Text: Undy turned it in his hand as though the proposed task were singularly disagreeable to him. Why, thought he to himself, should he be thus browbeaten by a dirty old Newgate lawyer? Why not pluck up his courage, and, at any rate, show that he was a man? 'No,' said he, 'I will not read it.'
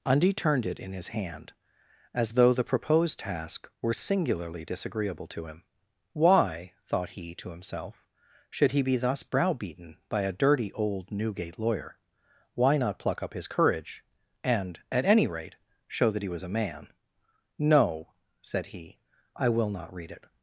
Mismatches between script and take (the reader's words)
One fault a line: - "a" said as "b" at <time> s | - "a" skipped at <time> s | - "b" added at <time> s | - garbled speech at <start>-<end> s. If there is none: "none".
none